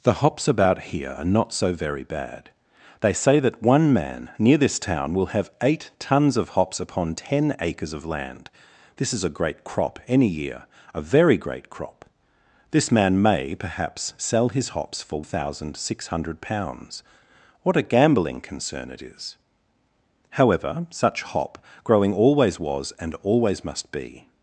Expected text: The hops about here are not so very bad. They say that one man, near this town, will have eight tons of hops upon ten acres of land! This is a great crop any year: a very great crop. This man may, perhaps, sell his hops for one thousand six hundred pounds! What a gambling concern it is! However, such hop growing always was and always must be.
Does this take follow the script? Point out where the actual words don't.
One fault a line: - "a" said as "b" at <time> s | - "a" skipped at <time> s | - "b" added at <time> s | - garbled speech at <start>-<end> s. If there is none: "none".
- "one" skipped at 15.2 s